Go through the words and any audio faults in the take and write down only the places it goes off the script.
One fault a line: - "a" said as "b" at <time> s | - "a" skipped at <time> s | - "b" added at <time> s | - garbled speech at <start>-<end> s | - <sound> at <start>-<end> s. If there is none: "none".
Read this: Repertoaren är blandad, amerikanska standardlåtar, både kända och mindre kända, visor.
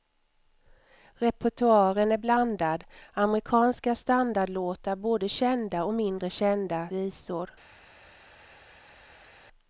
none